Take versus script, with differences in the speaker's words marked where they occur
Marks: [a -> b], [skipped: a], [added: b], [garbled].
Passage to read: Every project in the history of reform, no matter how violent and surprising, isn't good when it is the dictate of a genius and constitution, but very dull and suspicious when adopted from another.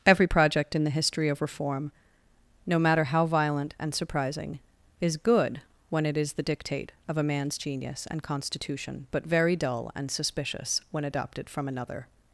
Every project in the history of reform, no matter how violent and surprising, [isn't -> is] good when it is the dictate of a [added: man's] genius and constitution, but very dull and suspicious when adopted from another.